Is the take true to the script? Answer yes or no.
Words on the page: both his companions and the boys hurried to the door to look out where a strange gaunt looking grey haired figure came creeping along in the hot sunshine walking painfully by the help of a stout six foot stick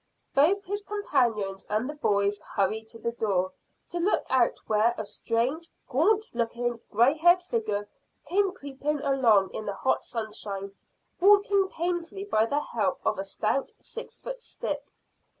yes